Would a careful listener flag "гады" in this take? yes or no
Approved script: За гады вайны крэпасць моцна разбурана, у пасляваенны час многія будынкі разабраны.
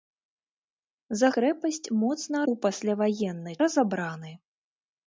yes